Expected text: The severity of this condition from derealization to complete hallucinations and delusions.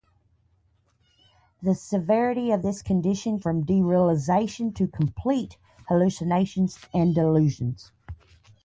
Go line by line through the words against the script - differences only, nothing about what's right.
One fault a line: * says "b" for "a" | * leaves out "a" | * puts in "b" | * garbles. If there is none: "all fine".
all fine